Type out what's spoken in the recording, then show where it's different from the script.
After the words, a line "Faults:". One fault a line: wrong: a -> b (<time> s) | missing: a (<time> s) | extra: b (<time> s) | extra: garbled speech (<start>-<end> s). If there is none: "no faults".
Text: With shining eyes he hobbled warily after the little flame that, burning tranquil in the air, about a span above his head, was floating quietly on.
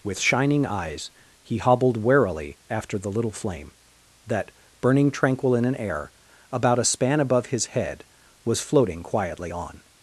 With shining eyes he hobbled warily after the little flame that, burning tranquil in an air, about a span above his head, was floating quietly on.
Faults:
wrong: the -> an (5.7 s)